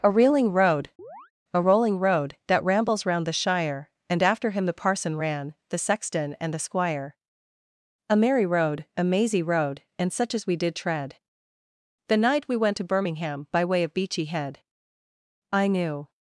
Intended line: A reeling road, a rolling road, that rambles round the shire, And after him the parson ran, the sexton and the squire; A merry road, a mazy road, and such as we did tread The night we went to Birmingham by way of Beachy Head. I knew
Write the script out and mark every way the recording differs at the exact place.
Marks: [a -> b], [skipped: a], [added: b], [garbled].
A reeling road, a rolling road, that rambles round the shire, And after him the parson ran, the sexton and the squire; A merry road, a mazy road, and such as we did tread The night we went to Birmingham by way of Beachy Head. I knew